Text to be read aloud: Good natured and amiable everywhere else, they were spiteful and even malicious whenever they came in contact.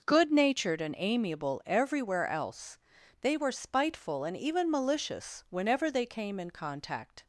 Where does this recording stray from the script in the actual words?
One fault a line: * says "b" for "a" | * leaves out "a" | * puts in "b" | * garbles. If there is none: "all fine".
all fine